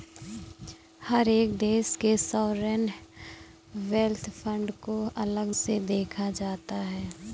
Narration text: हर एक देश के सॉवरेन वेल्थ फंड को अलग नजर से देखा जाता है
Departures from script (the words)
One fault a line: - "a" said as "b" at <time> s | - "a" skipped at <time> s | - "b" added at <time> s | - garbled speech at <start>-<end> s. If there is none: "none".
- "नजर" skipped at 5.5 s